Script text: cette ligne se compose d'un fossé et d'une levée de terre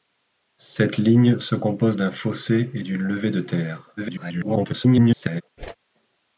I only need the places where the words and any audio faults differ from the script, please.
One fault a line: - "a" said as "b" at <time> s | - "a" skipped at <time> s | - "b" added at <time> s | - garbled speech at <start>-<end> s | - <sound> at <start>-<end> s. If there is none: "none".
- garbled speech at 4.0-5.4 s
- whoosh at 5.6-5.8 s